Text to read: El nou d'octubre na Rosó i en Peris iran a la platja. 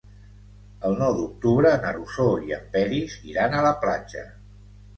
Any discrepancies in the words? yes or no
no